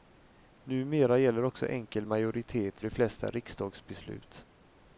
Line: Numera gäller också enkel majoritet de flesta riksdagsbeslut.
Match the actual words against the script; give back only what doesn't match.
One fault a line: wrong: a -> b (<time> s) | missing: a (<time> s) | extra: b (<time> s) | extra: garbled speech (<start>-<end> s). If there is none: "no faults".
no faults